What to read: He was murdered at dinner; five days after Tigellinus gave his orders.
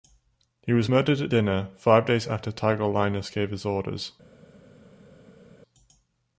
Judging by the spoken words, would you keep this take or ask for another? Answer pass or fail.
pass